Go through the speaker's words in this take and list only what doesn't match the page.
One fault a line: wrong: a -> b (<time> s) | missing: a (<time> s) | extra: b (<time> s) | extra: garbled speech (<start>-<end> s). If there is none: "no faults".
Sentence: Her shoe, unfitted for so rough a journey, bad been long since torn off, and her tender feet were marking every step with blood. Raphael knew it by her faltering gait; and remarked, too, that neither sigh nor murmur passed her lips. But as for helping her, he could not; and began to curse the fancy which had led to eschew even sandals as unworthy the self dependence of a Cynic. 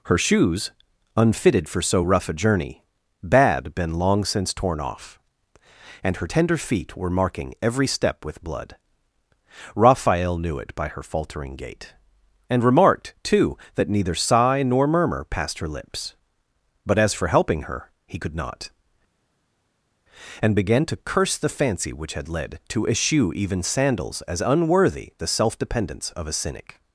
wrong: shoe -> shoes (0.2 s)